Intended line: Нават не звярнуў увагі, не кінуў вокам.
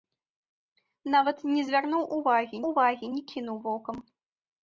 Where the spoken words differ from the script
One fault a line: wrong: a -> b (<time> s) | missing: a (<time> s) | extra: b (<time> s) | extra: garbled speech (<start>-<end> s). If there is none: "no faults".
extra: увагі (2.7 s)